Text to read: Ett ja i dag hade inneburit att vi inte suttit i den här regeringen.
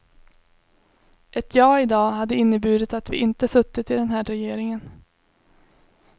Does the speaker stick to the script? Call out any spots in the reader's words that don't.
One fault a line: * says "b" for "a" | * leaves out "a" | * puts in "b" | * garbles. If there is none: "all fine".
all fine